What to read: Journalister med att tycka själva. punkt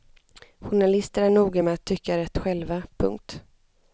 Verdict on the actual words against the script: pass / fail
fail